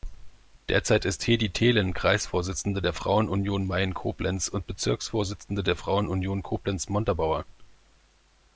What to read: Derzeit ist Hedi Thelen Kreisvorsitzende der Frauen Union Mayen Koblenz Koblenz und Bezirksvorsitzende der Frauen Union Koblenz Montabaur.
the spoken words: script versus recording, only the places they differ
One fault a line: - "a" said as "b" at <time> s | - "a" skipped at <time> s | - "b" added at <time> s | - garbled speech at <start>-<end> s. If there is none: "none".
- "Koblenz" skipped at 4.5 s